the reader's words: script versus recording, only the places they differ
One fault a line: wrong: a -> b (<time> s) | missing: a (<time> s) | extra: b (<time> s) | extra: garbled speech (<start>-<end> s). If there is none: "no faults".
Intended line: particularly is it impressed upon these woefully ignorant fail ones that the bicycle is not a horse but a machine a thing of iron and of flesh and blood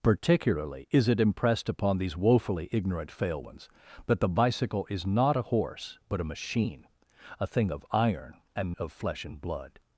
no faults